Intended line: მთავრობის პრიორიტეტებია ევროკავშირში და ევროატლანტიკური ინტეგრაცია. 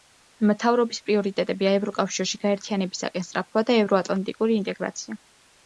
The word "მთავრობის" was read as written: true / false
true